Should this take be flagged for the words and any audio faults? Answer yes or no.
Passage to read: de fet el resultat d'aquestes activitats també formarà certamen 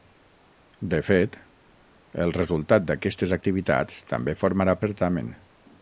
no